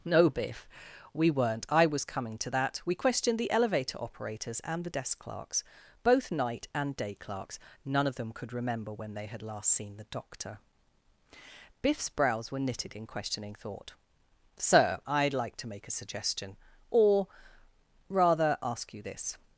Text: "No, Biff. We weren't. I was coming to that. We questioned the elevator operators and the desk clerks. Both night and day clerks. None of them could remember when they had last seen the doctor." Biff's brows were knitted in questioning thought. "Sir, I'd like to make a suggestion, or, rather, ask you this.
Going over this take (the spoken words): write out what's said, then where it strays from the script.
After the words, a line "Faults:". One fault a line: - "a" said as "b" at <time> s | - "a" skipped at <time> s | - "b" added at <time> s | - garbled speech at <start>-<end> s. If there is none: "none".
"No, Biff. We weren't. I was coming to that. We questioned the elevator operators and the desk clerks. Both night and day clerks. None of them could remember when they had last seen the doctor." Biff's brows were knitted in questioning thought. "Sir, I'd like to make a suggestion, or, rather, ask you this.
Faults:
none